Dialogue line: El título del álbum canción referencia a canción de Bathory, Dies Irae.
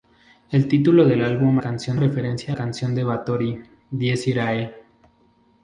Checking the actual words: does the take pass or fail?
pass